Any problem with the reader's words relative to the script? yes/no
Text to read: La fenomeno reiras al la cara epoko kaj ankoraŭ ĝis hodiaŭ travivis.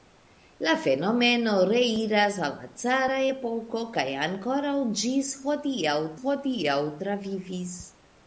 yes